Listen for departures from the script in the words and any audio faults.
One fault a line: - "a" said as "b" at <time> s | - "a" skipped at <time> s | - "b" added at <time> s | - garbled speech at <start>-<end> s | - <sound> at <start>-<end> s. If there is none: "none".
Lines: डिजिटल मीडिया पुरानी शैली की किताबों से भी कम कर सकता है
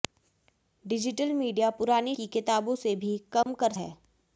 - "शैली" skipped at 2.1 s
- dropout at 3.4-3.5 s
- "सकता" skipped at 3.7 s